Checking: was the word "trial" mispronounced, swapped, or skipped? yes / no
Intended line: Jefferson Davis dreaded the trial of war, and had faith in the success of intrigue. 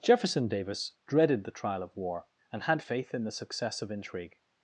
no